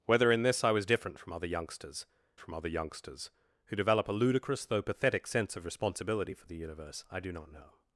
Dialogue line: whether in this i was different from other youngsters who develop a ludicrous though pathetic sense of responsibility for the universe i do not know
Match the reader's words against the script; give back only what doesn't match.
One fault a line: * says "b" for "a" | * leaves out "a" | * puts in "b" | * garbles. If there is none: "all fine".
* puts in "from other youngsters"